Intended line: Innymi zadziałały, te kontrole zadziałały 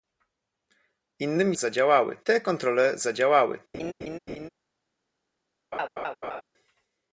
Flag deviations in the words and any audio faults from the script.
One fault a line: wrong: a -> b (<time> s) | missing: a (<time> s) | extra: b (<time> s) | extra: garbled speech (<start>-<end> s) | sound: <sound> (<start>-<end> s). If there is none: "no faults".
sound: laugh (3.7-4.5 s)
sound: laugh (5.7-6.4 s)